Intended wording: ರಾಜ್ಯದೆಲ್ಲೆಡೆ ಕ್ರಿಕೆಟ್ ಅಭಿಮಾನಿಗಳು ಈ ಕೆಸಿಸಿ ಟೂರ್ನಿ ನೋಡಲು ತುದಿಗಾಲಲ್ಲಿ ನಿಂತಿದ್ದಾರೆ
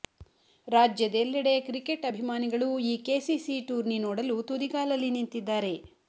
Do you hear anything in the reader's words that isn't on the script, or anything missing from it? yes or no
no